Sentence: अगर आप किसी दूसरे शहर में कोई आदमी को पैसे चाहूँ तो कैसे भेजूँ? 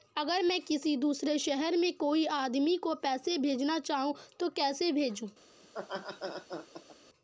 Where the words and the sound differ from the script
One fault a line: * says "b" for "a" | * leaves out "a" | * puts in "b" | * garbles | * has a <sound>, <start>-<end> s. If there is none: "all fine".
* says "मैं" for "आप"
* puts in "भेजना"
* has a laugh, 5.6-7.0 s